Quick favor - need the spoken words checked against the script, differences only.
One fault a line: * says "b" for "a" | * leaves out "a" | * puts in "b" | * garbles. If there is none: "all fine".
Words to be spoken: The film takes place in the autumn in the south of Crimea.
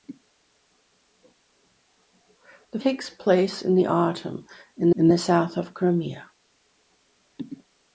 * leaves out "film"
* puts in "in"